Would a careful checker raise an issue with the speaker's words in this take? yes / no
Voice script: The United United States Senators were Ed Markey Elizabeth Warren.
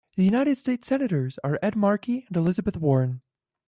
yes